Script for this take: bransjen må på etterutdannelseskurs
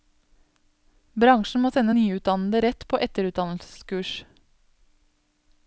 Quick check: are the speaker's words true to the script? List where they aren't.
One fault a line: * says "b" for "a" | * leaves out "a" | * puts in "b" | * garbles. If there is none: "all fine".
* puts in "sende nyutdannede rett"